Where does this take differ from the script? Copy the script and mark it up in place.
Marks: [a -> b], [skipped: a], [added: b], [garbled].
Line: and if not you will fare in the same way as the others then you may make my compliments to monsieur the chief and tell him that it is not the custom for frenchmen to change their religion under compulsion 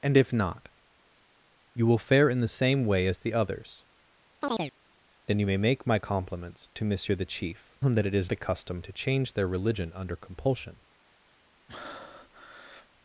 and if not you will fare in the same way as the others then you may make my compliments to monsieur the chief [skipped: and tell] him that it is [skipped: not] the custom [skipped: for frenchmen] to change their religion under compulsion